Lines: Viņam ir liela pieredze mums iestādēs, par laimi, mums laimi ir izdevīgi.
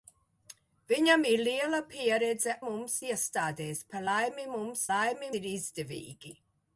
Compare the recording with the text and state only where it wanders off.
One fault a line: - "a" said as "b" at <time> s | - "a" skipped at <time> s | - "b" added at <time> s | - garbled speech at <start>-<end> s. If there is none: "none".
none